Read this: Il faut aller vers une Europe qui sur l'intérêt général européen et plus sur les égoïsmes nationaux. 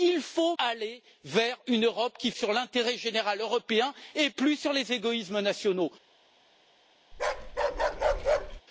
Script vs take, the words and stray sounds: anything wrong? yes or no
yes